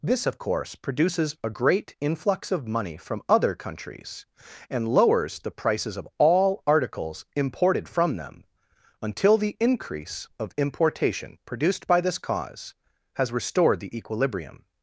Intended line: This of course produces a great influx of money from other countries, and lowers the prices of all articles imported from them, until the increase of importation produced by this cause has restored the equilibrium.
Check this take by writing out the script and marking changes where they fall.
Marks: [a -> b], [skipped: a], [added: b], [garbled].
This of course produces a great influx of money from other countries, and lowers the prices of all articles imported from them, until the increase of importation produced by this cause has restored the equilibrium.